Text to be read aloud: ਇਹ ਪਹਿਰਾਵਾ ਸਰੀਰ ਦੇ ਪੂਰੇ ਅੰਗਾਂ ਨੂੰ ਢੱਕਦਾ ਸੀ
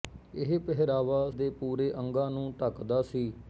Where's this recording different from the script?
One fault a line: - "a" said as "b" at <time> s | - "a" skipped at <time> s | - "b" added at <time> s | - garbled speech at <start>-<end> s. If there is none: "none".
- "ਸਰੀਰ" skipped at 1.3 s